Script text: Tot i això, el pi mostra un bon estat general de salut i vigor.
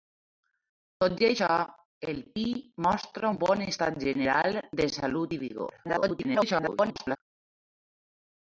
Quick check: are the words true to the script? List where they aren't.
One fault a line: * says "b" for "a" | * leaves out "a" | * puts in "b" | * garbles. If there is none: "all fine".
* garbles